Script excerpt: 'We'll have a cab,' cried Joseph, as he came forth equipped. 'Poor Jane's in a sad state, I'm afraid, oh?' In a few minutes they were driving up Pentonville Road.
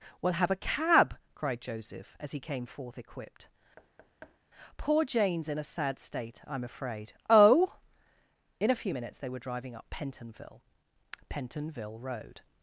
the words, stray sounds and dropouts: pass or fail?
fail